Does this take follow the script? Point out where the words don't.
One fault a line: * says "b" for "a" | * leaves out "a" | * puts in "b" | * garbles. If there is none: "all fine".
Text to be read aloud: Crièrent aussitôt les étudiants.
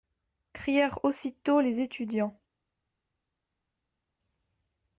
all fine